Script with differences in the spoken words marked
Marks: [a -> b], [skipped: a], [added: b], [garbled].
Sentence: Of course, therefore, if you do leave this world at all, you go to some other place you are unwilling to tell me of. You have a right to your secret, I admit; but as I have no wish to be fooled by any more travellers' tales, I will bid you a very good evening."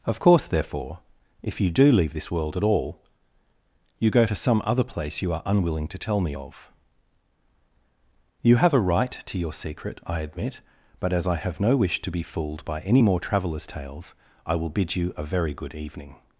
Of course, therefore, if you do leave this world at all, you go to some other place you are unwilling to tell me of. You have a right to your secret, I admit; but as I have no wish to be fooled by any more travellers' tales, I will bid you a very good evening."